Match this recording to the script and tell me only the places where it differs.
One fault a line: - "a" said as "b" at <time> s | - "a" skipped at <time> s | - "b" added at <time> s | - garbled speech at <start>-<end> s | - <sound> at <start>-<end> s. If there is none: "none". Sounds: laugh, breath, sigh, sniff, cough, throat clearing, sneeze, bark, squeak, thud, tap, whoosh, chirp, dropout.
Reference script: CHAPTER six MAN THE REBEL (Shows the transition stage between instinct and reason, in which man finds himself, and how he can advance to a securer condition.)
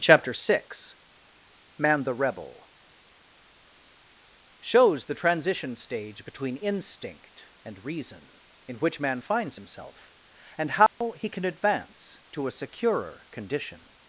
- dropout at 10.9-11.0 s